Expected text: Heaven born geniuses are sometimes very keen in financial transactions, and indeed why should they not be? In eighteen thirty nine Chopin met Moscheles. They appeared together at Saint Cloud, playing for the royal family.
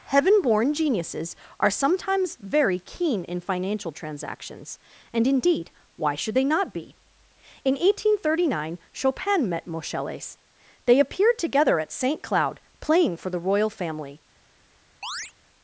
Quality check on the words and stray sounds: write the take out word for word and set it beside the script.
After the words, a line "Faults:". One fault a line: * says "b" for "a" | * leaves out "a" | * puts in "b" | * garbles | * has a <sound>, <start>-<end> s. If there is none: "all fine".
Heaven born geniuses are sometimes very keen in financial transactions, and indeed why should they not be? In eighteen thirty nine Chopin met Moscheles. They appeared together at Saint Cloud, playing for the royal family.
Faults:
* has a chirp, 15.0-15.3 s